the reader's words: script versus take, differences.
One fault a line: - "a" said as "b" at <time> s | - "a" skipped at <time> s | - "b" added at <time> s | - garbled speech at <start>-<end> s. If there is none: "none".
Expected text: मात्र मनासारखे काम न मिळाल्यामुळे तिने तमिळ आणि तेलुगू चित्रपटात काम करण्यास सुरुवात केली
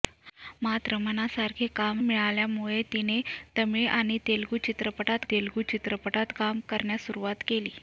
- "न" skipped at 2.0 s
- "तेलुगू चित्रपटात" added at 5.3 s